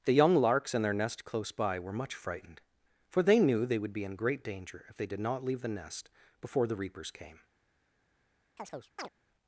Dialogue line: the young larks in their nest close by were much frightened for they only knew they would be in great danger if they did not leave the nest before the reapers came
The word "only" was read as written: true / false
false